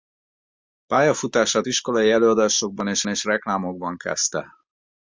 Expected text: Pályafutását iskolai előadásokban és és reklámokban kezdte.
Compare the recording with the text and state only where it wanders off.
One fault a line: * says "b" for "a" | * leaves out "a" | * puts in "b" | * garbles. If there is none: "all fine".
all fine